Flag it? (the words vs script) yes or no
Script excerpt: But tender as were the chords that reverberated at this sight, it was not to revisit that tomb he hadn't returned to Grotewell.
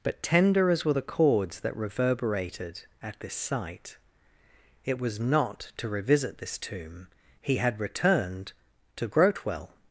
yes